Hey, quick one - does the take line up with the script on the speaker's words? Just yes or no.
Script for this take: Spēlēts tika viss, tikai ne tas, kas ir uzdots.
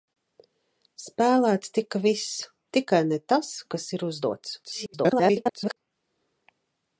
no